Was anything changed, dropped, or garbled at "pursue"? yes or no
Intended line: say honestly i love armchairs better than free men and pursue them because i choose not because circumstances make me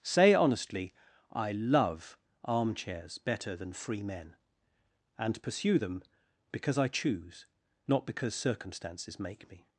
no